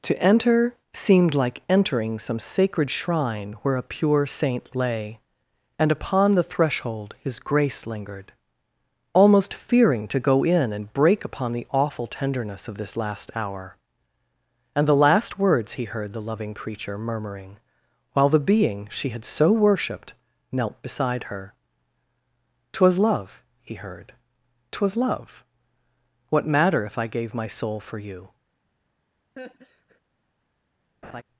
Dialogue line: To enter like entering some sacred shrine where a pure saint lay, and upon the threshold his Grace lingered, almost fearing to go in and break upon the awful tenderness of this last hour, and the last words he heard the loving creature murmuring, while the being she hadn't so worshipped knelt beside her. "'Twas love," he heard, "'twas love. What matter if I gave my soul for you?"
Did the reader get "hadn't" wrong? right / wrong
wrong